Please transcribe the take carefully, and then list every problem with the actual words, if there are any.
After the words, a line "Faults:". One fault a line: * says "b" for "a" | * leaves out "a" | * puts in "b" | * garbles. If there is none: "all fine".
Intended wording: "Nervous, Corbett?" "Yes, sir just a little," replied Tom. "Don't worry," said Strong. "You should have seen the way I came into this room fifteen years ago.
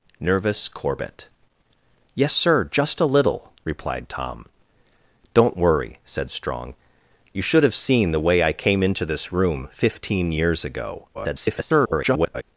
"Nervous, Corbett?" "Yes, sir just a little," replied Tom. "Don't worry," said Strong. "You should have seen the way I came into this room fifteen years ago. [garbled]
Faults:
* garbles